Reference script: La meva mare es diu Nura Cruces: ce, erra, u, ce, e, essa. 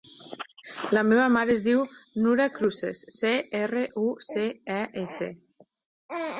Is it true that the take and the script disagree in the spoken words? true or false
false